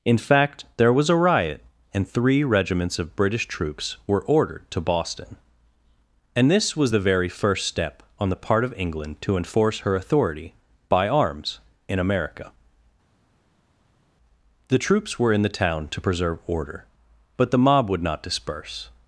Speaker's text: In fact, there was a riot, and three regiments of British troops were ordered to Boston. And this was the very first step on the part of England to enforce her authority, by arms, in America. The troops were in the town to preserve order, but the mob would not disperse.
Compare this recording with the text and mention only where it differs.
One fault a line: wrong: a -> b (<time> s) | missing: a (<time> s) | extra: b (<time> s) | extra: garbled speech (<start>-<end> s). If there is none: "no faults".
no faults